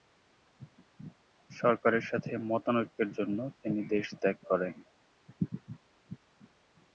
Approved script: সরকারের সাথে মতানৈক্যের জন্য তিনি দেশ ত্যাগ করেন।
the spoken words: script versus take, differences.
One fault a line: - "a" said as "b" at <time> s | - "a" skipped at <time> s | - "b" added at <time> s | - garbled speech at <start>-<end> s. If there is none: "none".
none